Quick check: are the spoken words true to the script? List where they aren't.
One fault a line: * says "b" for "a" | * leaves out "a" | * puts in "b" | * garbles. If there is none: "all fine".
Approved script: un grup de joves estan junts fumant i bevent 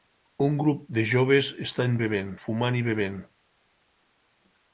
* says "bevent" for "junts"